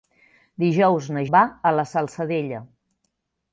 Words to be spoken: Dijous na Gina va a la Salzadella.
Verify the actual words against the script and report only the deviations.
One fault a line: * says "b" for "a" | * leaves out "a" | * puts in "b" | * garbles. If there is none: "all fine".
* leaves out "Gina"